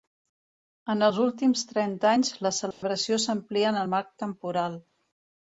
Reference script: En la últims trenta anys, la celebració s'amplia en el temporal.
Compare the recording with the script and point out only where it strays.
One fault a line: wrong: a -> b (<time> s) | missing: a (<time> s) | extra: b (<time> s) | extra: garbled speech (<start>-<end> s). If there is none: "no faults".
wrong: la -> els (1.1 s)
extra: marc (4.0 s)